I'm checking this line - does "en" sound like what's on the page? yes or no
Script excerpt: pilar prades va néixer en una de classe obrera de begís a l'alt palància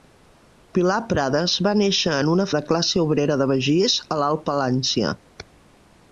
yes